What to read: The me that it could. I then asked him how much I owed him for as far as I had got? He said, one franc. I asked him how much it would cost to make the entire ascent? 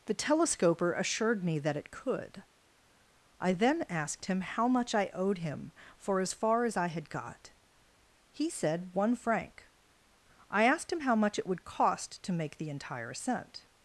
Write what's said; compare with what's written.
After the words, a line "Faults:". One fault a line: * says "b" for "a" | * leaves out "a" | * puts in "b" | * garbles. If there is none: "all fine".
The telescoper assured me that it could. I then asked him how much I owed him for as far as I had got? He said, one franc. I asked him how much it would cost to make the entire ascent?
Faults:
* puts in "telescoper assured"